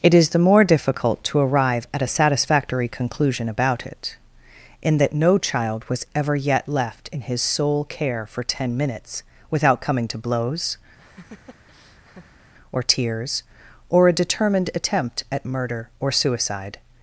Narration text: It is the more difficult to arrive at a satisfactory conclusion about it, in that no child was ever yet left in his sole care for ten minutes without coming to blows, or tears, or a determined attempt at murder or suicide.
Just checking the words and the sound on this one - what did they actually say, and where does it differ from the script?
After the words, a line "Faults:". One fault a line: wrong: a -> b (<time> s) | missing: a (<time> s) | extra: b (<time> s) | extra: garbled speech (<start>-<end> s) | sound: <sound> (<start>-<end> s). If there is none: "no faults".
It is the more difficult to arrive at a satisfactory conclusion about it, in that no child was ever yet left in his sole care for ten minutes without coming to blows, or tears, or a determined attempt at murder or suicide.
Faults:
sound: laugh (11.0-12.5 s)